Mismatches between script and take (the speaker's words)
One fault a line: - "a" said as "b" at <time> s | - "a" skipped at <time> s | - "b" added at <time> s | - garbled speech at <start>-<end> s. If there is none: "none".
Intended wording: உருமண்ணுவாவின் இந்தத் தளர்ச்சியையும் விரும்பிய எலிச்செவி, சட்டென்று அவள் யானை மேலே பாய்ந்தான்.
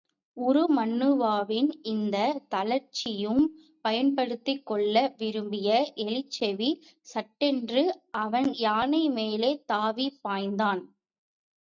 - "பயன்படுத்திக் கொள்ள" added at 3.8 s
- "அவள்" said as "அவன்" at 8.2 s
- "தாவிப்" added at 9.7 s